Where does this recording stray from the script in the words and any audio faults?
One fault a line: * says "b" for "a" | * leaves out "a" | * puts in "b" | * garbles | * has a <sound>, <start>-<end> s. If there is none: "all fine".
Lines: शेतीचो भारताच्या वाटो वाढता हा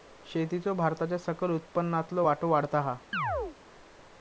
* puts in "सकल उत्पन्नातलो"
* has a chirp, 3.1-3.6 s